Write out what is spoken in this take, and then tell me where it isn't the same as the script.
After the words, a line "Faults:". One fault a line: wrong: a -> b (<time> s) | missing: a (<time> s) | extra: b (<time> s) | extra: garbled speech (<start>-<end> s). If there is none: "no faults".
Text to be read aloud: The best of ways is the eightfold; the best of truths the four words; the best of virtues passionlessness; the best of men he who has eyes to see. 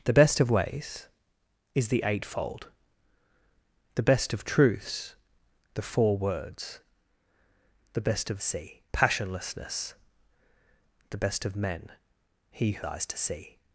The best of ways is the eightfold; the best of truths the four words; the best of see passionlessness; the best of men he who eyes to see.
Faults:
wrong: virtues -> see (8.4 s)
missing: has (12.8 s)